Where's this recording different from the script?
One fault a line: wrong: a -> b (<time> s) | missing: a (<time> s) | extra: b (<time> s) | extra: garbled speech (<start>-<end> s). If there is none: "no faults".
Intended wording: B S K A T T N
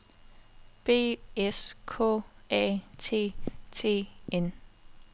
no faults